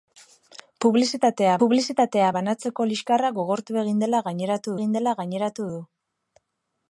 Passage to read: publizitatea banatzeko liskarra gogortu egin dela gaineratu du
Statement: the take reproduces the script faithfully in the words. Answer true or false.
false